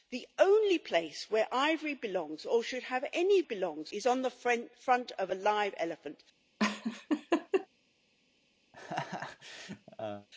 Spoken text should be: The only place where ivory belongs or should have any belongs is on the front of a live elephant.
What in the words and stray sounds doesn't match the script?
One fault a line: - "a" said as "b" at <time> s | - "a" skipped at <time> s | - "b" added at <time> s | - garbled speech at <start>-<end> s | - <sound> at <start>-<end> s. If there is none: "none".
- laugh at 6.6-7.7 s
- laugh at 8.7-10.3 s